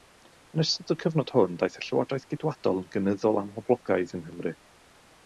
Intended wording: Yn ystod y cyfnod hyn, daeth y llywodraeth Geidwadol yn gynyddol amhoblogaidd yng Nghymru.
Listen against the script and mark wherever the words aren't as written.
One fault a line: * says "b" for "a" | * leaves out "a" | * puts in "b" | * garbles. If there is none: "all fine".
* says "hwn" for "hyn"